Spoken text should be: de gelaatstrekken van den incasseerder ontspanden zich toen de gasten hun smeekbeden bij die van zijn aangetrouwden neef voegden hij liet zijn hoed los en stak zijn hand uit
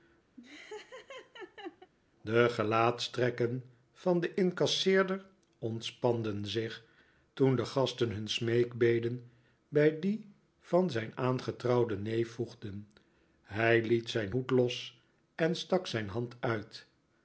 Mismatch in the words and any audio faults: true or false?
true